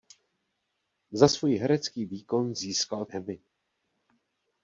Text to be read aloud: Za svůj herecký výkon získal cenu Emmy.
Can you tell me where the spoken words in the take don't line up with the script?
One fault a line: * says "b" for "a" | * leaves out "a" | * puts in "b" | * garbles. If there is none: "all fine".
* leaves out "cenu"